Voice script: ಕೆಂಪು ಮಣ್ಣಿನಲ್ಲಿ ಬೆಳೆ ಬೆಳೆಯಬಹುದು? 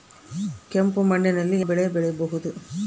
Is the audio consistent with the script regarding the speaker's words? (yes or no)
yes